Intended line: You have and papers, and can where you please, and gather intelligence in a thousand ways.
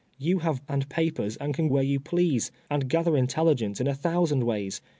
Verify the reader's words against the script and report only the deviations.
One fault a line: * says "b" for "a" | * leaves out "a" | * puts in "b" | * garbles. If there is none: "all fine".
all fine